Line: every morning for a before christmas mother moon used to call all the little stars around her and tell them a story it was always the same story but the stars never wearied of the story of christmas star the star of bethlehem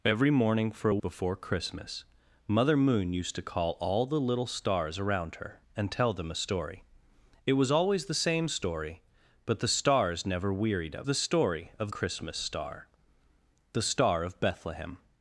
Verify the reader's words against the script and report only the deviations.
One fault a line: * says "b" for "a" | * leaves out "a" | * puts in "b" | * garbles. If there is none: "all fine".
all fine